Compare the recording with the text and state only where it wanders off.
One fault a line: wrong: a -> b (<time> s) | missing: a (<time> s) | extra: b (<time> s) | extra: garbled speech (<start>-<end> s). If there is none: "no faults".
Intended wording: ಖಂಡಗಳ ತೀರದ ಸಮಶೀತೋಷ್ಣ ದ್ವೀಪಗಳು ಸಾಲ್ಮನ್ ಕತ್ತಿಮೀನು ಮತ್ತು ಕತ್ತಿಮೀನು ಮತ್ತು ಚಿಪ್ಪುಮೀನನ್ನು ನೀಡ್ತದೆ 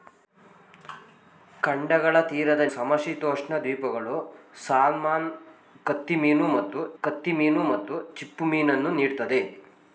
no faults